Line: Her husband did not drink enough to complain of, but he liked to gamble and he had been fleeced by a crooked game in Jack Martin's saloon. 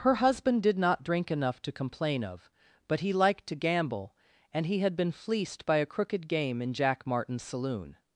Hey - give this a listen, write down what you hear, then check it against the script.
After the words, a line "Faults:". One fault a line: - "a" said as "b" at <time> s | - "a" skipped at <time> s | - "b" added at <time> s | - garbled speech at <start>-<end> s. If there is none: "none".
Her husband did not drink enough to complain of, but he liked to gamble and he had been fleeced by a crooked game in Jack Martin's saloon.
Faults:
none